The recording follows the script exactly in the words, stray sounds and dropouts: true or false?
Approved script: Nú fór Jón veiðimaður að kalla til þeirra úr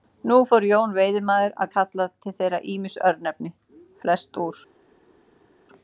false